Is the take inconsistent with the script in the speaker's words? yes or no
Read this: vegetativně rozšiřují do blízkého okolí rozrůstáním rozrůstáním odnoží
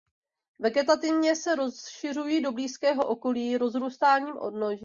yes